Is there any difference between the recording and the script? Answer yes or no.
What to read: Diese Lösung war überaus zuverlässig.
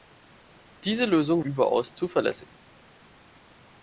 yes